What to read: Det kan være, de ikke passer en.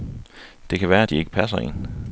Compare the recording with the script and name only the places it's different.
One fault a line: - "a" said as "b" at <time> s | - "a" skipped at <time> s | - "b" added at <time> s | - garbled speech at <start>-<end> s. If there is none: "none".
none